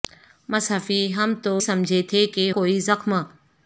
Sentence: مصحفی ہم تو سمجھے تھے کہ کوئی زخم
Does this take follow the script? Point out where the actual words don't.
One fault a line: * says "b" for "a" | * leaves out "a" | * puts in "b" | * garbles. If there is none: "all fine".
all fine